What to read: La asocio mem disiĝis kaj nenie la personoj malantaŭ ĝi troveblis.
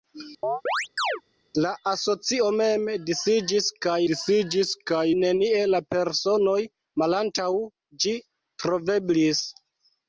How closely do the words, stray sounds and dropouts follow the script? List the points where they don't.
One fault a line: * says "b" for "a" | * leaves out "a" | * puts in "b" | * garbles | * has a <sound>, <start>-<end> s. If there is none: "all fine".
* has a chirp, 0.4-1.2 s
* puts in "disiĝis kaj"